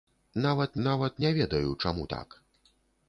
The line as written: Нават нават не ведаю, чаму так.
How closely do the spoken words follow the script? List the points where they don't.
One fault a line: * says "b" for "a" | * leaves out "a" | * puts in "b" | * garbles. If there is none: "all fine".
all fine